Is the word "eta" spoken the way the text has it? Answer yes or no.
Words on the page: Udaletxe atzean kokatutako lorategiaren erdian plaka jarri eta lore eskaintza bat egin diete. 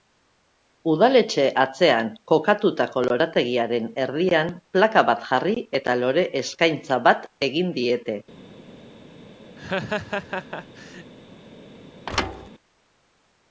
yes